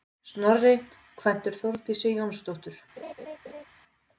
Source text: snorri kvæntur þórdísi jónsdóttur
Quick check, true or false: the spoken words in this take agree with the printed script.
true